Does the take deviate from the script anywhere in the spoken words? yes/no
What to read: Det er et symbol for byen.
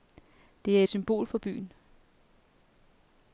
no